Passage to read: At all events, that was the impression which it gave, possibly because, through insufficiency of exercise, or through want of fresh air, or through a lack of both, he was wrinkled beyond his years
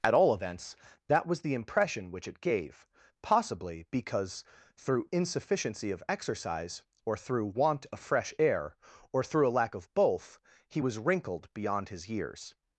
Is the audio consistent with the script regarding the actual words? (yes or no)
yes